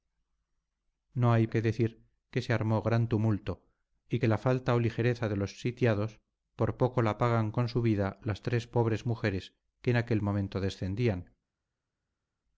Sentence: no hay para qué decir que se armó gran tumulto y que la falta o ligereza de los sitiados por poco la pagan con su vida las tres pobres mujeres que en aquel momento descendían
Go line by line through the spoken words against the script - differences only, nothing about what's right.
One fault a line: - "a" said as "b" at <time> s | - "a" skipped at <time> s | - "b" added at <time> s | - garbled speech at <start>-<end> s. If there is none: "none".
- "para" skipped at 1.4 s